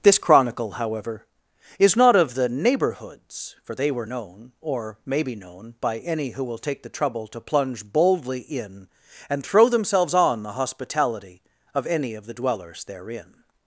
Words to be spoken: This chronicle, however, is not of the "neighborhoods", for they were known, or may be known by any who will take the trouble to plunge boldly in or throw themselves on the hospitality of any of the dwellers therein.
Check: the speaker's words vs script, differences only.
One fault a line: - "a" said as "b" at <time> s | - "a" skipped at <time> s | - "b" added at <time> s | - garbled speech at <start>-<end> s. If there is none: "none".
- "or" said as "and" at 9.3 s